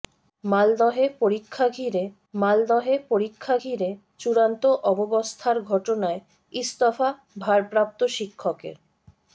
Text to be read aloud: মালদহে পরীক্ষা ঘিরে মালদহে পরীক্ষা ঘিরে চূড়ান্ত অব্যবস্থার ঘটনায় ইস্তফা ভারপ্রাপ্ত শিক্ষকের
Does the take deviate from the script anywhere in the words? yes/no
no